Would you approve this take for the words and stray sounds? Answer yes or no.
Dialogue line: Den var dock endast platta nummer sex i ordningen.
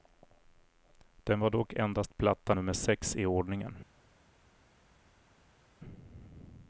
yes